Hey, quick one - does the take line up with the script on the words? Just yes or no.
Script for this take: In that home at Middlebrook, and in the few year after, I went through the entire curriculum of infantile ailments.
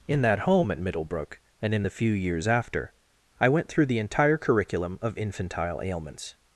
no